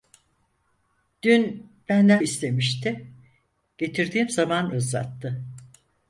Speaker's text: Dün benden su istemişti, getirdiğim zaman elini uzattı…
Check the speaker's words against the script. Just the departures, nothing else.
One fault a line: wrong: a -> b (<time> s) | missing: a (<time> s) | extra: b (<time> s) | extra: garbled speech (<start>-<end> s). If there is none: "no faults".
missing: su (2.2 s)
missing: elini (4.7 s)